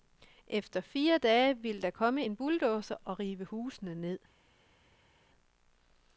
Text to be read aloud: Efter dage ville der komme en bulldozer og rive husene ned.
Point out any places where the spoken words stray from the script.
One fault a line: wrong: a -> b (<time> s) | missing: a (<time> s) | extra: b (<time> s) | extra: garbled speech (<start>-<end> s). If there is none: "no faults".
extra: fire (0.8 s)